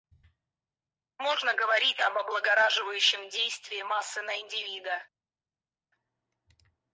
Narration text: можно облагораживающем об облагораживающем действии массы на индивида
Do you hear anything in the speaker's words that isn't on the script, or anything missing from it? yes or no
yes